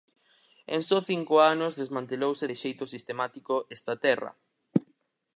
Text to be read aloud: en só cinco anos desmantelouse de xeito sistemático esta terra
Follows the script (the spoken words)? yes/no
yes